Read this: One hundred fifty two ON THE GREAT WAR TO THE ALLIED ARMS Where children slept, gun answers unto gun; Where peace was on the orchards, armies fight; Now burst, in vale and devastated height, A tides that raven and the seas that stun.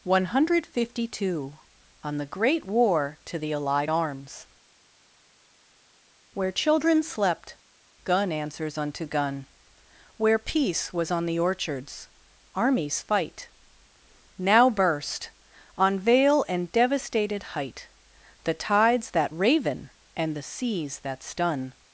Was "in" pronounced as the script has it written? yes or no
no